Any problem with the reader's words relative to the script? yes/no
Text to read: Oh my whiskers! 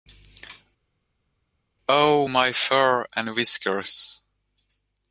yes